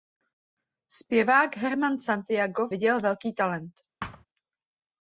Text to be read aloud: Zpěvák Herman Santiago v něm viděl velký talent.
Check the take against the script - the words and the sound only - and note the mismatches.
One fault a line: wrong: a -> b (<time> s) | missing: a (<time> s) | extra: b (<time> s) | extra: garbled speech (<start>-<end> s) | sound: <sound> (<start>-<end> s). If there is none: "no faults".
missing: něm (2.7 s)
sound: thud (4.0-4.3 s)